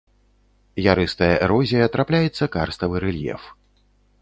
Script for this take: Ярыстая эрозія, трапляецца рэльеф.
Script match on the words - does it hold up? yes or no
no